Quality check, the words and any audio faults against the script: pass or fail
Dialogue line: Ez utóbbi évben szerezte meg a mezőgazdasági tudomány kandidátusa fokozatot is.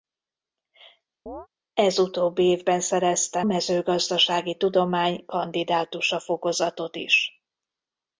fail